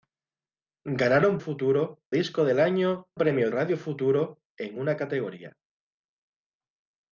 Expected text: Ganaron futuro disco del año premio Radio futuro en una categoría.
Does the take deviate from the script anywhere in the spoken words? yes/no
no